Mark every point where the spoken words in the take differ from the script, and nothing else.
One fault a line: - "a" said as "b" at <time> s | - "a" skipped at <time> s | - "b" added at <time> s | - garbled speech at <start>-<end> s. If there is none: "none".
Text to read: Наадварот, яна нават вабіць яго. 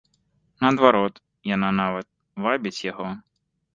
none